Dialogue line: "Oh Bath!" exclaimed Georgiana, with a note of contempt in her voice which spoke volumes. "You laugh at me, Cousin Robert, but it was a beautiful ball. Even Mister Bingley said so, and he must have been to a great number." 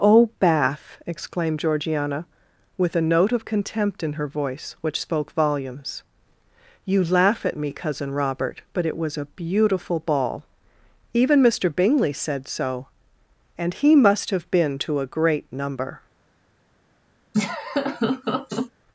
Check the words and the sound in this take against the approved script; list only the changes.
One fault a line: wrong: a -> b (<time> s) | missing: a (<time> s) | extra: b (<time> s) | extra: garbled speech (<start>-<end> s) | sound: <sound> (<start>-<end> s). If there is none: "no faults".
sound: laugh (17.3-18.7 s)